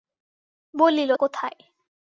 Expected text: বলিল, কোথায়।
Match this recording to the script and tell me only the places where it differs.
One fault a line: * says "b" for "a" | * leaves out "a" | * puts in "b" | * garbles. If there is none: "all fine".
all fine